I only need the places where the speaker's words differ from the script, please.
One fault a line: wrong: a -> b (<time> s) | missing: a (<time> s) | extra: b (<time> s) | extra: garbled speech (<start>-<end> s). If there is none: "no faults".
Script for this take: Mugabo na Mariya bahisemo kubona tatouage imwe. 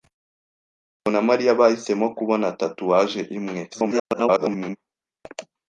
extra: garbled speech (3.7-4.8 s)